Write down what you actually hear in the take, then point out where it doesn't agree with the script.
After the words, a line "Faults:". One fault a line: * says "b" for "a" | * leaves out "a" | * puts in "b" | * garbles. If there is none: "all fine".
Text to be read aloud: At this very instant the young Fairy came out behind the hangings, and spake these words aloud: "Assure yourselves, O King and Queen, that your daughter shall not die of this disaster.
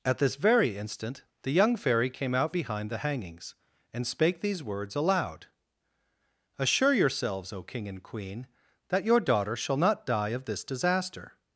At this very instant the young Fairy came out behind the hangings, and spake these words aloud: "Assure yourselves, O King and Queen, that your daughter shall not die of this disaster.
Faults:
all fine